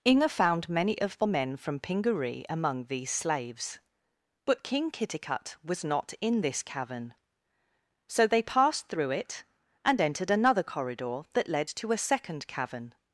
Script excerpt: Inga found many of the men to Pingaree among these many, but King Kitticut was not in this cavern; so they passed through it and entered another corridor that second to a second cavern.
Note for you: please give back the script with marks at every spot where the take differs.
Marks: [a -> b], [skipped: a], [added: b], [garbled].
Inga found many of the men [to -> from] Pingaree among these [many, -> slaves] but King Kitticut was not in this cavern; so they passed through it and entered another corridor that [second -> led] to a second cavern.